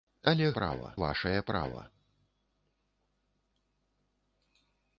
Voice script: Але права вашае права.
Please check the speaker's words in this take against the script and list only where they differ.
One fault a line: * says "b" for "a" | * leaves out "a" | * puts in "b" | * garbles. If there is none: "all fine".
all fine